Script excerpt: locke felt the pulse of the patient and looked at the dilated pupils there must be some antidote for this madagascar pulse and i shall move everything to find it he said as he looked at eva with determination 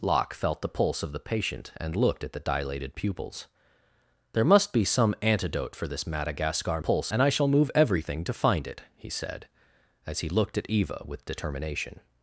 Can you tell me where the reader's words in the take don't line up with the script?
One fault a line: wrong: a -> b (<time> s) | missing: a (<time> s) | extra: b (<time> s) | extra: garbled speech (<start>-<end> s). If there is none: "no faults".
no faults